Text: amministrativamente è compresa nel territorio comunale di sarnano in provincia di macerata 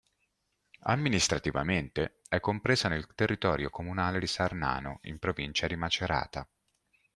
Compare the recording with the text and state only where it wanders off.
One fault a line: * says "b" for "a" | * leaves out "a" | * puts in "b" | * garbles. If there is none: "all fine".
all fine